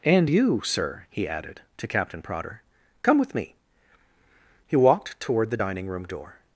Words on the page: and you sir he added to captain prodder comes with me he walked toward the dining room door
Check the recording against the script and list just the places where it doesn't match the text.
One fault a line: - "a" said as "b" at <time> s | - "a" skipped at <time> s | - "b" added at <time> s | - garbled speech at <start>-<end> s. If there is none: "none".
- "comes" said as "come" at 3.0 s